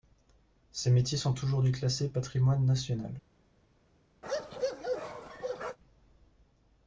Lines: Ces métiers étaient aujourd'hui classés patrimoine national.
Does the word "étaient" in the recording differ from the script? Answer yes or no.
yes